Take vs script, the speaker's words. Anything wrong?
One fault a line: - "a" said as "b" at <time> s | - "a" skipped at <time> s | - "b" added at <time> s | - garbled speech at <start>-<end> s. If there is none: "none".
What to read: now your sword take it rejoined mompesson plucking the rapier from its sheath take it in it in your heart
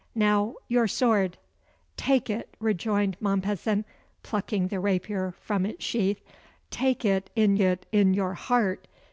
none